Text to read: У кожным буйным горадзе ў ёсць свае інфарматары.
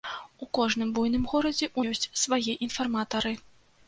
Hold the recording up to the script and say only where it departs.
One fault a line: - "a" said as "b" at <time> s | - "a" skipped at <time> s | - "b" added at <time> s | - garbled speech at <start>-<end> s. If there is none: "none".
none